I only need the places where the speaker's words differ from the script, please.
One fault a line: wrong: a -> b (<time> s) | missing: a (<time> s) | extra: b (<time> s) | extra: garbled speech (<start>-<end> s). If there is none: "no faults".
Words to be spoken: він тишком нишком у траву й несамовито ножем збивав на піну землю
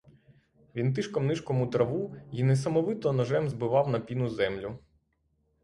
no faults